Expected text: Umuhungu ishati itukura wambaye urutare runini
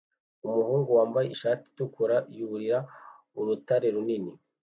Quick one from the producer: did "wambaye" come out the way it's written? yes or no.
no